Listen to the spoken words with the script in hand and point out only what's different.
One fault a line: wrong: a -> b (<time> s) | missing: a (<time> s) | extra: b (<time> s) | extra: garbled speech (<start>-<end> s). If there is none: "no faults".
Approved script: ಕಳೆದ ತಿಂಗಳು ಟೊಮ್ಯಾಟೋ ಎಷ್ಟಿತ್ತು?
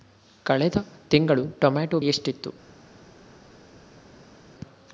no faults